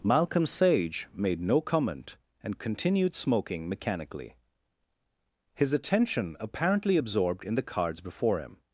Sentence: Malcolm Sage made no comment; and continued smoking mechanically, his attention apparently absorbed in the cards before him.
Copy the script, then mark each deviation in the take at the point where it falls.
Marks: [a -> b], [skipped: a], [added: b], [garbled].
Malcolm Sage made no comment; and continued smoking mechanically, his attention apparently absorbed in the cards before him.